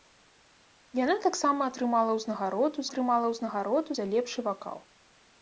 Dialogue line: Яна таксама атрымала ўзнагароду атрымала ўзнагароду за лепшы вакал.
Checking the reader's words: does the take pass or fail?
pass